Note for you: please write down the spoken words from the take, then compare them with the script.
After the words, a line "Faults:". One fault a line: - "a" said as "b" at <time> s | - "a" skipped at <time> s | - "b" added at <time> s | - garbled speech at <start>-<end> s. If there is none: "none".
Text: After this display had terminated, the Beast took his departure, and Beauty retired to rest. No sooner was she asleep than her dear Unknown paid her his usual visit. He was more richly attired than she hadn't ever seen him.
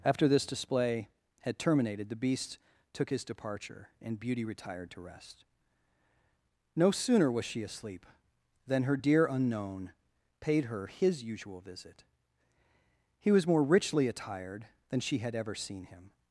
After this display had terminated, the Beast took his departure, and Beauty retired to rest. No sooner was she asleep than her dear Unknown paid her his usual visit. He was more richly attired than she had ever seen him.
Faults:
- "hadn't" said as "had" at 15.2 s